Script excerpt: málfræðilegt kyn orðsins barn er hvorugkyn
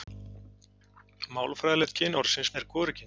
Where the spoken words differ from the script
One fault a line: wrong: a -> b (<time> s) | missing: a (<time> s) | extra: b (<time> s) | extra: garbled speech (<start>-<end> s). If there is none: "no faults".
missing: barn (2.5 s)